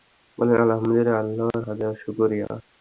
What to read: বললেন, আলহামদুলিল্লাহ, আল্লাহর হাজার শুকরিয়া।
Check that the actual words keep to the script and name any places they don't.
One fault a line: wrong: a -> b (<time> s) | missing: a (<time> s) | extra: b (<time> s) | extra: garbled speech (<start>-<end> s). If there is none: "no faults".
no faults